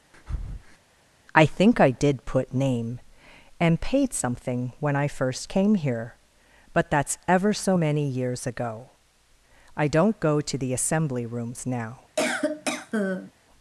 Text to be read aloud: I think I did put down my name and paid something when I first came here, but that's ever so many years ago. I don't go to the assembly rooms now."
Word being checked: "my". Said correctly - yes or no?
no